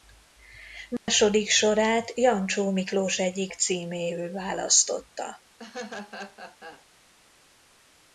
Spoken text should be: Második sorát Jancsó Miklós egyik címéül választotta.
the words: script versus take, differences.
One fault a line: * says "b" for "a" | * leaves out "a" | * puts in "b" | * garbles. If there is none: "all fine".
all fine